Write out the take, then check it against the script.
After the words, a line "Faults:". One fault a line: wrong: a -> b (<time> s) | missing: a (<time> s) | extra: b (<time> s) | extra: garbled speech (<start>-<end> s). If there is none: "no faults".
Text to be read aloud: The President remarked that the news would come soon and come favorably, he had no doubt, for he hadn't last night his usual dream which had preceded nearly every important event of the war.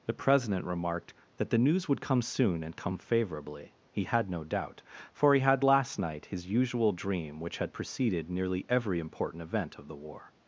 The President remarked that the news would come soon and come favorably, he had no doubt, for he had last night his usual dream which had preceded nearly every important event of the war.
Faults:
wrong: hadn't -> had (5.4 s)